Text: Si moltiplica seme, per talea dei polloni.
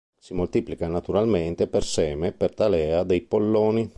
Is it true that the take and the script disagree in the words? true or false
true